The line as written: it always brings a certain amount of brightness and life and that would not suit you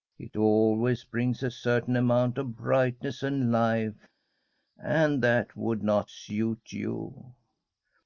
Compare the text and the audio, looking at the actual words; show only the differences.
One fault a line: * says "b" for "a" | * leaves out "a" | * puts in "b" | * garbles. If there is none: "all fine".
all fine